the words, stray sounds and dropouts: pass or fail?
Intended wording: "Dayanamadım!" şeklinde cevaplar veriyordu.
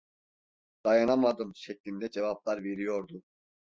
pass